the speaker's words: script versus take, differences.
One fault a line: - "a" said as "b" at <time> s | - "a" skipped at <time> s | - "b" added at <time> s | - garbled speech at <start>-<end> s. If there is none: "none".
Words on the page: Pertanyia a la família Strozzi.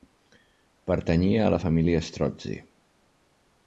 none